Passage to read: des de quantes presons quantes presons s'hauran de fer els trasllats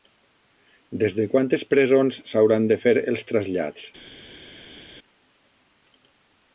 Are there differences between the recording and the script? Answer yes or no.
yes